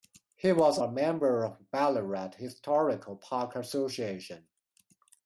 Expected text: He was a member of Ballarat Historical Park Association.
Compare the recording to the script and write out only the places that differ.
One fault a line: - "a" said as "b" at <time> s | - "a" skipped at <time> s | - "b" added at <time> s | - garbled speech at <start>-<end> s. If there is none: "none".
none